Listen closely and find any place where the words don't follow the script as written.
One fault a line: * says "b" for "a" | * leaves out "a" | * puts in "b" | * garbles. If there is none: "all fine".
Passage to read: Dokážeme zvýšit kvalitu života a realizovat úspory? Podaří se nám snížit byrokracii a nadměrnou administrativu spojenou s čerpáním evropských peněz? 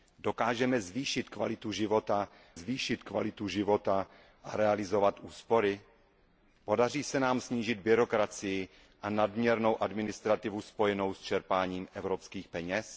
* puts in "zvýšit kvalitu života"